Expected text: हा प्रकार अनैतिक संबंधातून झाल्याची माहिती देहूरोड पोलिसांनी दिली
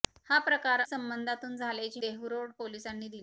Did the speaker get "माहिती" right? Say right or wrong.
wrong